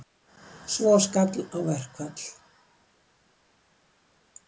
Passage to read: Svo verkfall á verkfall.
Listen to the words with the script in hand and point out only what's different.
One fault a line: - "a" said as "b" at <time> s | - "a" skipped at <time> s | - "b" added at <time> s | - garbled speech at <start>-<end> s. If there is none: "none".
- "verkfall" said as "skall" at 1.1 s